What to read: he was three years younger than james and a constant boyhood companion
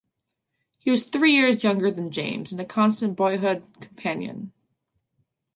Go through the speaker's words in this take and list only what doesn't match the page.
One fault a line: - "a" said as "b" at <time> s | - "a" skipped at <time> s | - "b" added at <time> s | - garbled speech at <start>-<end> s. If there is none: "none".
none